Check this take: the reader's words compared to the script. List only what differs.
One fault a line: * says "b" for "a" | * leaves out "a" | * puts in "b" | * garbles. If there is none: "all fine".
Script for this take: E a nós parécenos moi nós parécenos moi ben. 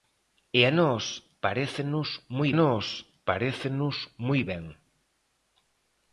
all fine